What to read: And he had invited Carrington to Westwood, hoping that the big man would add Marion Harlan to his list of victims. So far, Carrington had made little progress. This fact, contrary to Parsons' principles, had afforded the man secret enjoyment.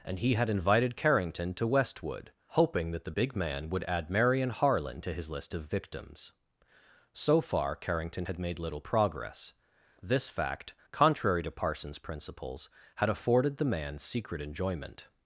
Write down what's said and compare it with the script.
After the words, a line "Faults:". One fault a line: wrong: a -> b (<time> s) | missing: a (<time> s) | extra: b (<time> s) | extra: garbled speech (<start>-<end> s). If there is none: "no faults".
And he had invited Carrington to Westwood, hoping that the big man would add Marion Harlan to his list of victims. So far, Carrington had made little progress. This fact, contrary to Parsons' principles, had afforded the man secret enjoyment.
Faults:
no faults